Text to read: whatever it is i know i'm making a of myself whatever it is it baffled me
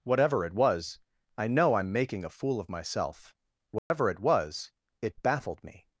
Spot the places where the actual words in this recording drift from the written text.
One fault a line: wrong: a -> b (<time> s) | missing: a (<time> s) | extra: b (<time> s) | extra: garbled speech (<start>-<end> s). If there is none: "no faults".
wrong: is -> was (0.5 s)
extra: fool (2.3 s)
wrong: is -> was (4.2 s)